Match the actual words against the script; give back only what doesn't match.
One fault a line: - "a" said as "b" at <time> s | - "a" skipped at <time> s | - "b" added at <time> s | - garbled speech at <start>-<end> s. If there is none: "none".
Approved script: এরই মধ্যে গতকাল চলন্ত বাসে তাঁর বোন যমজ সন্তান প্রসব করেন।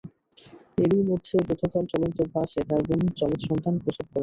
none